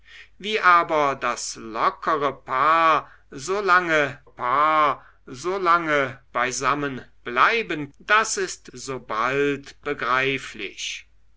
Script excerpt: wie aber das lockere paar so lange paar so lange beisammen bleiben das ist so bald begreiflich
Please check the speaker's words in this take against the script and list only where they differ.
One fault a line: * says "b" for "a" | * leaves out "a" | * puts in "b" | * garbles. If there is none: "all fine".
all fine